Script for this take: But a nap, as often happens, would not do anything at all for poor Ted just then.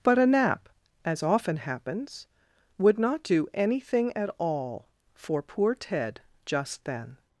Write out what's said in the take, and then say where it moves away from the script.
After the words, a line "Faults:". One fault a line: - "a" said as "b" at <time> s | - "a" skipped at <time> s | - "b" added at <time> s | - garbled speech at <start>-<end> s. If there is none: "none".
But a nap, as often happens, would not do anything at all for poor Ted just then.
Faults:
none